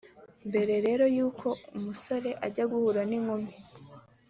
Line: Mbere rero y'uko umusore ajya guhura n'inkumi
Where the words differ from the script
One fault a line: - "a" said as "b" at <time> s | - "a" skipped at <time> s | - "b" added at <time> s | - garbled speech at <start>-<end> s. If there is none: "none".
none